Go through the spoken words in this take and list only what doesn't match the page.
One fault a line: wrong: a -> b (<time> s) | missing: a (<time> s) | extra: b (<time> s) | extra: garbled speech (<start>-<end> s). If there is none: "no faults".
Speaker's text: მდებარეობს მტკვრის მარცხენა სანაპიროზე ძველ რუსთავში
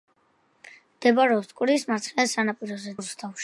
missing: ძველ (3.0 s)